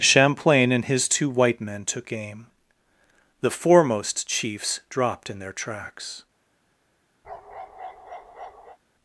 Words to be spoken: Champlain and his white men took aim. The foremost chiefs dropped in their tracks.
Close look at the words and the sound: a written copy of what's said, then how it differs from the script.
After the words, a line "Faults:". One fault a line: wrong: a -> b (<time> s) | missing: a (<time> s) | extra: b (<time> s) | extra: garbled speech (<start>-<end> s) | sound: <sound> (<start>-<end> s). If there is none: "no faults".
Champlain and his two white men took aim. The foremost chiefs dropped in their tracks.
Faults:
extra: two (1.1 s)
sound: bark (7.2-8.8 s)